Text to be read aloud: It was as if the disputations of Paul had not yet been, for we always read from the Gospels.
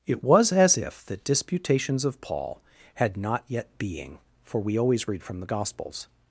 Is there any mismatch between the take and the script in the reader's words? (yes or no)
yes